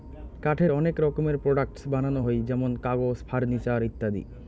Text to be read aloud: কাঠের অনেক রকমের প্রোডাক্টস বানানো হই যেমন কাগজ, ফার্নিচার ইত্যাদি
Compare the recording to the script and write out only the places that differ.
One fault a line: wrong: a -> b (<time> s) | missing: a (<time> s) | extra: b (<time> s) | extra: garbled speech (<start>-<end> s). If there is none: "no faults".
no faults